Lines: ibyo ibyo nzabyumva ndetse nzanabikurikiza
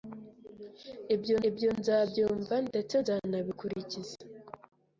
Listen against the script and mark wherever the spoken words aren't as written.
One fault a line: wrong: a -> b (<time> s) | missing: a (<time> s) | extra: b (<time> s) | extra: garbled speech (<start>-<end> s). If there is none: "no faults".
no faults